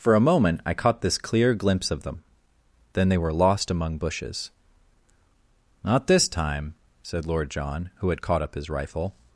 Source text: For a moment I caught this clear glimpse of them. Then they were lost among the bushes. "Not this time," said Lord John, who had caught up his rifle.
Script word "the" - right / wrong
wrong